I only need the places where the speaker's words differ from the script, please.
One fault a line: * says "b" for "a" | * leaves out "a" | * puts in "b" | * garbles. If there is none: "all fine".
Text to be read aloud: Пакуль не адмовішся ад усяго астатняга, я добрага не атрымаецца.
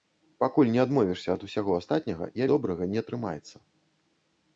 all fine